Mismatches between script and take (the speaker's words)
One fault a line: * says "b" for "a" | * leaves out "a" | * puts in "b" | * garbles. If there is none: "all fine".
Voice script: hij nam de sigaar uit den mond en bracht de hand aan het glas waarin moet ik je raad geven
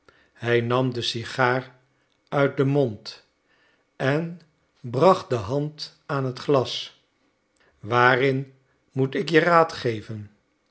all fine